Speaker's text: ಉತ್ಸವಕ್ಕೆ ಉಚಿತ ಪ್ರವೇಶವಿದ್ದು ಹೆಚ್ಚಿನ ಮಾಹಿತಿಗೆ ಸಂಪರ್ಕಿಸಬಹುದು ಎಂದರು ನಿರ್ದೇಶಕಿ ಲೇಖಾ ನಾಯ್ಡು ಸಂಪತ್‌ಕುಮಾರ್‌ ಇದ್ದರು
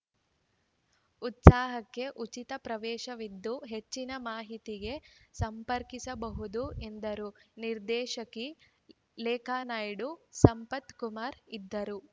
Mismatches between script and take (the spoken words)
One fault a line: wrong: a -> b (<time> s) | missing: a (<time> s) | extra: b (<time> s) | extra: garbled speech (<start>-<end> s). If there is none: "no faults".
no faults